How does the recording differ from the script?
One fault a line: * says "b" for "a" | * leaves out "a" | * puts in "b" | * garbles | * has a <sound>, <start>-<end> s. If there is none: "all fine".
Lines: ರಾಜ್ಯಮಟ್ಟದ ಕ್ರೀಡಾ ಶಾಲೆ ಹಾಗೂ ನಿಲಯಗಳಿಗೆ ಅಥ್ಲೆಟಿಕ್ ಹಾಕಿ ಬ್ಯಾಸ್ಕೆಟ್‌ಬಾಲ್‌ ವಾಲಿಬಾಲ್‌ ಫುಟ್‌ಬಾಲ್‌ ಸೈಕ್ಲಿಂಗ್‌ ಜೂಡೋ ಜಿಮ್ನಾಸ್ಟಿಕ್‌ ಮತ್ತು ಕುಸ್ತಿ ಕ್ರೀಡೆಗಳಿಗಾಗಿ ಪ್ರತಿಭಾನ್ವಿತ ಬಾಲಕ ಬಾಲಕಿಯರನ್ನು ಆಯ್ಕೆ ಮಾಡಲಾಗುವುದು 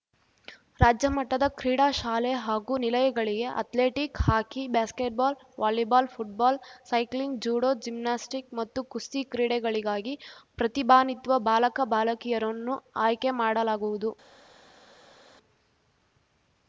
all fine